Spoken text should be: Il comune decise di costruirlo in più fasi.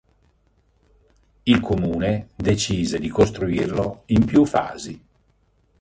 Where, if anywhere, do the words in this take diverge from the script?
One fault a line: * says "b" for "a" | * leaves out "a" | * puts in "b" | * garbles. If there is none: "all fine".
all fine